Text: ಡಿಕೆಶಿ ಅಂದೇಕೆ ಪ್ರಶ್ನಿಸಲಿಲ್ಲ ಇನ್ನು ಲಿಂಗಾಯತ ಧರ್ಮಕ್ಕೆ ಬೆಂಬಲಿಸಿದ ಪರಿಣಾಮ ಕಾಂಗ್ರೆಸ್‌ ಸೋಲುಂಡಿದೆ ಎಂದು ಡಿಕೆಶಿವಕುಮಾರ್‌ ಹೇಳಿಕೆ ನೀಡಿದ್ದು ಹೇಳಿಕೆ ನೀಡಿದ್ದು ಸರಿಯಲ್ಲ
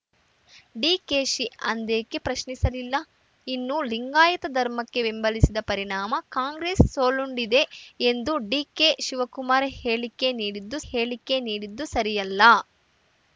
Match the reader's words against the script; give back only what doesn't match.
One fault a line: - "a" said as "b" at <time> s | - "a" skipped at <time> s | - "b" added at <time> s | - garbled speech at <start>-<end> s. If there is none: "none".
none